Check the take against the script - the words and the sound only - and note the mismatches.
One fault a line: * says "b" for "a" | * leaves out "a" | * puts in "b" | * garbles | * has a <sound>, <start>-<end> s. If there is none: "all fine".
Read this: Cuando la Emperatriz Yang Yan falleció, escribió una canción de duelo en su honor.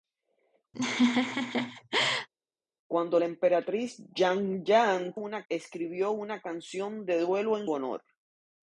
* has a laugh, 0.7-2.3 s
* says "una" for "falleció"
* leaves out "su"